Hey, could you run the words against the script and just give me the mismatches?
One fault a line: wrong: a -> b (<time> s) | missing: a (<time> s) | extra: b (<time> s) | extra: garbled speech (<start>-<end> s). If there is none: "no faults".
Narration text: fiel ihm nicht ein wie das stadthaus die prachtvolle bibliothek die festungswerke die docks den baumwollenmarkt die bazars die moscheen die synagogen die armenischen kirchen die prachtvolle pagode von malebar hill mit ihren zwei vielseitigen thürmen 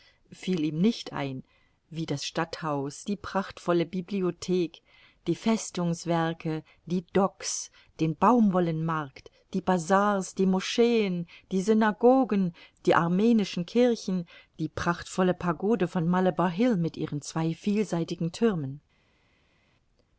no faults